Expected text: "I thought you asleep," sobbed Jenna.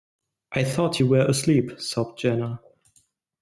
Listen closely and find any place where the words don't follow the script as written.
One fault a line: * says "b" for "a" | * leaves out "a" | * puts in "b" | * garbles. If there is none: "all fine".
* puts in "were"